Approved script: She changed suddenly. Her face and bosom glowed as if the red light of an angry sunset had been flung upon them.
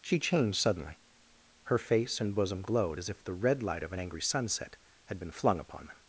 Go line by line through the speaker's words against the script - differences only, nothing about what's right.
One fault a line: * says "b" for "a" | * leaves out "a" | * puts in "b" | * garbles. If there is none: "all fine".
all fine